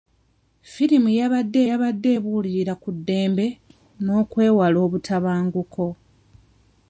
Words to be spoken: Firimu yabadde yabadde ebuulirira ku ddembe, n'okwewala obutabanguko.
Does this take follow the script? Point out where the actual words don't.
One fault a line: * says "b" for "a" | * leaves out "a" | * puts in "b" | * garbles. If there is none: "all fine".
all fine